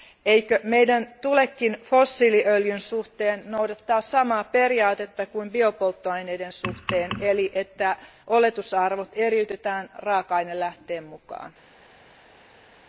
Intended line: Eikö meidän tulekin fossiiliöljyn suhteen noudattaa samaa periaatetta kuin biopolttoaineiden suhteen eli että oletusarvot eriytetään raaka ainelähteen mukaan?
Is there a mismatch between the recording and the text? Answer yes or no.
no